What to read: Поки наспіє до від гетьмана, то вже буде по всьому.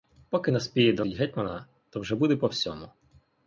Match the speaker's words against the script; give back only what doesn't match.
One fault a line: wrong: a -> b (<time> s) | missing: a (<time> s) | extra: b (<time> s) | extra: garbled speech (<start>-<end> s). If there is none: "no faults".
no faults